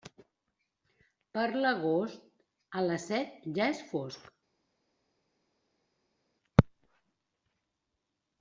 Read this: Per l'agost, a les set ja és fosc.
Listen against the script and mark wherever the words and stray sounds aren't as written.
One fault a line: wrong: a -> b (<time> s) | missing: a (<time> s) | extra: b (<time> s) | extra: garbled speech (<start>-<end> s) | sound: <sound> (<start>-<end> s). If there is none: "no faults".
no faults